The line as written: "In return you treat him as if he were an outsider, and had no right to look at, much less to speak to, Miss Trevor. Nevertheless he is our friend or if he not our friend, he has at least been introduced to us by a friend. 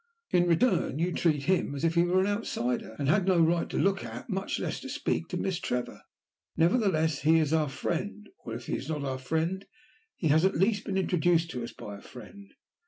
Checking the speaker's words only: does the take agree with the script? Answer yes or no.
no